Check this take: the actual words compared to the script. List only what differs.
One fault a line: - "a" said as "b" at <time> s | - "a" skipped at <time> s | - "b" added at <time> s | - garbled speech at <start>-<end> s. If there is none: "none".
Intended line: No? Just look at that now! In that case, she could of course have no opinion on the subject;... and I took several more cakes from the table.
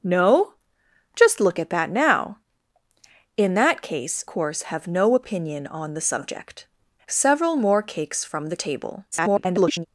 - "she could of" skipped at 4.2 s
- "and I took" skipped at 6.7 s
- garbled speech at 9.1-9.9 s